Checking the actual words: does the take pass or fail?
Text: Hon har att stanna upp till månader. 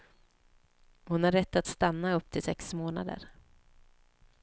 fail